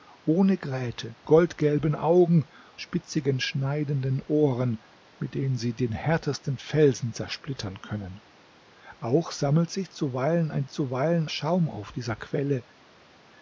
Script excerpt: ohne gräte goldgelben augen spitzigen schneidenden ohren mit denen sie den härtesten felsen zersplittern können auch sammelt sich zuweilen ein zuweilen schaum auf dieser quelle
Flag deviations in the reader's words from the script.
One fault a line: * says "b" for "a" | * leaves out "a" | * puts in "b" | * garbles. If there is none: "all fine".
all fine